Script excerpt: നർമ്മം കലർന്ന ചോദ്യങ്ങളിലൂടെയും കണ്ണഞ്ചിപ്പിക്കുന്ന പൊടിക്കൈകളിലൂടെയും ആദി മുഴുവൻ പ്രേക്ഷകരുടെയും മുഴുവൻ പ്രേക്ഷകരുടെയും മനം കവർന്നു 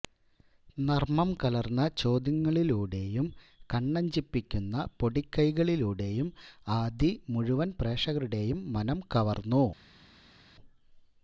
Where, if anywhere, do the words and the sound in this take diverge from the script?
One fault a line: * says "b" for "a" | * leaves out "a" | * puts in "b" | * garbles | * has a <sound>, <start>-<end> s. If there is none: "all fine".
* leaves out "മുഴുവൻ പ്രേക്ഷകരുടെയും"